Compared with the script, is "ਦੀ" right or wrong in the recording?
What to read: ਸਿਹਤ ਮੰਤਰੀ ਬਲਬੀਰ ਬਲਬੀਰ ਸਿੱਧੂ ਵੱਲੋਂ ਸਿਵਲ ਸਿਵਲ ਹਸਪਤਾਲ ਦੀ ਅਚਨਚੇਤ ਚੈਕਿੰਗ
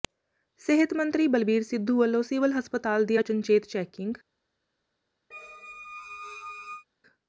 right